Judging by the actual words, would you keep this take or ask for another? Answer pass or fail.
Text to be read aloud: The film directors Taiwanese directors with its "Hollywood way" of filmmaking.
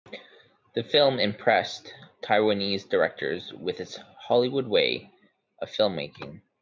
fail